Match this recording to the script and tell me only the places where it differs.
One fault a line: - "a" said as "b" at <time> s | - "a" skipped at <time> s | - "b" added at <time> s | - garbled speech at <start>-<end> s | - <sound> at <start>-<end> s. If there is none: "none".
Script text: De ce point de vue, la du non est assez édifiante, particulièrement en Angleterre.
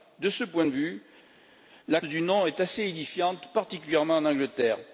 none